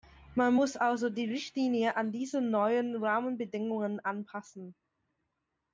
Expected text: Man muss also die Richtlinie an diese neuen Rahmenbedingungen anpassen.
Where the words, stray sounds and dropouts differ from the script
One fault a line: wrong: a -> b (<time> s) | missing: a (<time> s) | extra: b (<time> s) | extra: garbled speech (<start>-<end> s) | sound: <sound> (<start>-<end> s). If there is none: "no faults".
no faults